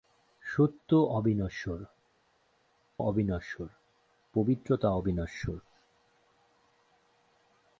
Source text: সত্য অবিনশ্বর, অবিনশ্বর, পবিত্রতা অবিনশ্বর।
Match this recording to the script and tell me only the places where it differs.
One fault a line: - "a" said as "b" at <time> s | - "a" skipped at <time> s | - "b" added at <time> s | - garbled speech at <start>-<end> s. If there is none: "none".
none